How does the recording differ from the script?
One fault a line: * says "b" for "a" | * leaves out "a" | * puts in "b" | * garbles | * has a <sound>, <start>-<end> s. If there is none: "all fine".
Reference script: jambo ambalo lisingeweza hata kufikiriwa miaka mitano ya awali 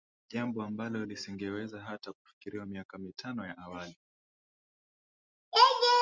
all fine